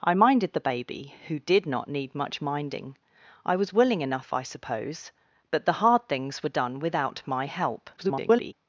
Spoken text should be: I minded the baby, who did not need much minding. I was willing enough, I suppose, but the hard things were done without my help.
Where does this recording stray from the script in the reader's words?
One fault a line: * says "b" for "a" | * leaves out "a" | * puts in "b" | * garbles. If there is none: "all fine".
* garbles